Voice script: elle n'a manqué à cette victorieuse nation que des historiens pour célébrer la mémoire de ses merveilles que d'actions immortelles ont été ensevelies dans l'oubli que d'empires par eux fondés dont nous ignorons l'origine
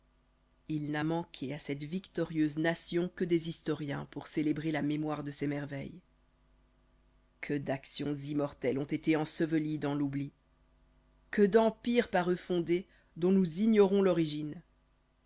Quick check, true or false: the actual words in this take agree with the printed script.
false